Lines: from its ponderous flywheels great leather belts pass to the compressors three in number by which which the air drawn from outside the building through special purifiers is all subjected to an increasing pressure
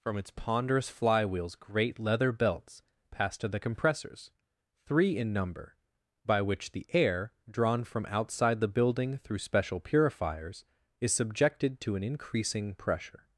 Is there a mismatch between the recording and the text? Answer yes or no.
yes